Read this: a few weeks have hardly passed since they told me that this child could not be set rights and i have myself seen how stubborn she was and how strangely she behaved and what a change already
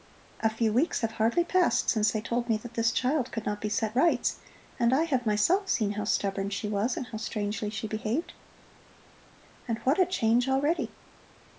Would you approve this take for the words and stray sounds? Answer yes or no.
yes